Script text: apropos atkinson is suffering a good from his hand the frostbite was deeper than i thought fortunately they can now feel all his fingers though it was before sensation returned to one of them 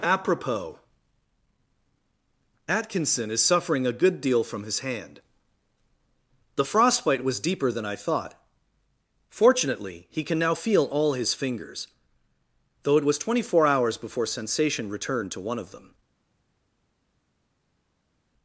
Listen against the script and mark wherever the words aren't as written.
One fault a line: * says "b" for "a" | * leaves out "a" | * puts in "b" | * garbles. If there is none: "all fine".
* puts in "deal"
* says "he" for "they"
* puts in "twenty four hours"